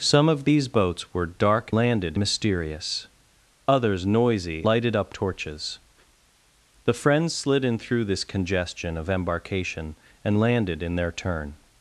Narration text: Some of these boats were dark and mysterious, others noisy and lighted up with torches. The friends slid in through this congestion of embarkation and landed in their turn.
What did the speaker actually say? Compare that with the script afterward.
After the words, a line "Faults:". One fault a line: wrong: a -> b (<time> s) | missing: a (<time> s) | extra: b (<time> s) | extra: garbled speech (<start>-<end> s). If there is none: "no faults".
Some of these boats were dark landed mysterious, others noisy lighted up torches. The friends slid in through this congestion of embarkation and landed in their turn.
Faults:
wrong: and -> landed (1.7 s)
missing: and (4.7 s)
missing: with (5.1 s)